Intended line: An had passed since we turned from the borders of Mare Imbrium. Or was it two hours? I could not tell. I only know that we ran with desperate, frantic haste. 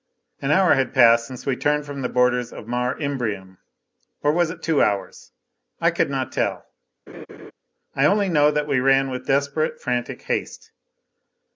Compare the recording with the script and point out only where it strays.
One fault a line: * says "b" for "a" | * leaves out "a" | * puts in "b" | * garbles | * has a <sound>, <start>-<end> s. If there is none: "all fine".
* puts in "hour"
* has a laugh, 7.1-7.5 s